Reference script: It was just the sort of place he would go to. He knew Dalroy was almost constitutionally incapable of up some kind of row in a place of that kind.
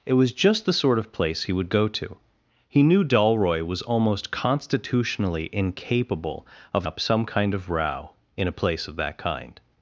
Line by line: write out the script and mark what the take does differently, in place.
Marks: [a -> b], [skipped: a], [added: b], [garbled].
It was just the sort of place he would go to. He knew Dalroy was almost constitutionally incapable of up some kind of row in a place of that kind.